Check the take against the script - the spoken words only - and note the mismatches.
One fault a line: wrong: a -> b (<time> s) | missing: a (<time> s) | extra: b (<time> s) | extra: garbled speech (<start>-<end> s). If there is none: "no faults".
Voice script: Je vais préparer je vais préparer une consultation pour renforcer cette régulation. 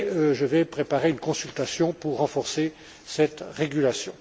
missing: je vais préparer (1.1 s)